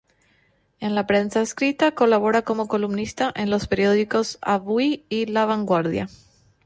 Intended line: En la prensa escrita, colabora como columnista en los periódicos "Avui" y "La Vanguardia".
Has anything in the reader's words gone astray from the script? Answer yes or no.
no